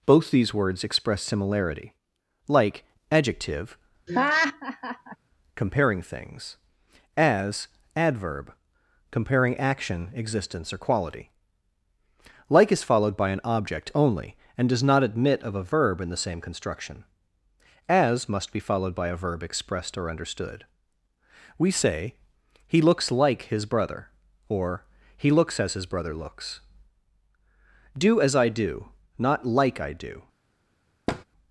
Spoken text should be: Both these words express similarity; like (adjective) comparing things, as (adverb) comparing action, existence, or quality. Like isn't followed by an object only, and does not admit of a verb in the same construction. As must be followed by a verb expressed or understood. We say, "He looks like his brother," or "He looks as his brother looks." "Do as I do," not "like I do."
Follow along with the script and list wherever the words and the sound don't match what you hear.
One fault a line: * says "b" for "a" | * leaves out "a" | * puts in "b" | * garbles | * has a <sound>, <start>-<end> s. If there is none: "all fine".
* has a laugh, 4.1-5.2 s
* says "is" for "isn't"
* has a thud, 31.1-31.2 s